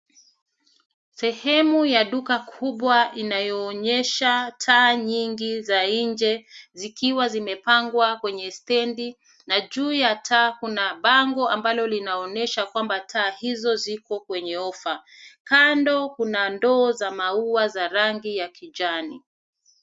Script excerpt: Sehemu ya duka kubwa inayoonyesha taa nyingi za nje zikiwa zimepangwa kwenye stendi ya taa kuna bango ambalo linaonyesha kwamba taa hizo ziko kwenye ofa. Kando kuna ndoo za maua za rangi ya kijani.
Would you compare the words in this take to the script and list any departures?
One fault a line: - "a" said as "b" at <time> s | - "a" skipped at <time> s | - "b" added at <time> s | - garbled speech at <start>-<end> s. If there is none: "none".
- "na juu" added at 9.5 s